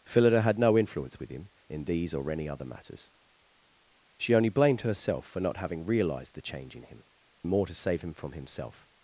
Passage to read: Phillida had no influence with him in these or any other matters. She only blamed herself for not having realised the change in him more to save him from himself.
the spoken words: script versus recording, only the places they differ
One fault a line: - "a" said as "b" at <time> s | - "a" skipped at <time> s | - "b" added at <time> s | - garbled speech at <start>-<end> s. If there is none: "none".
none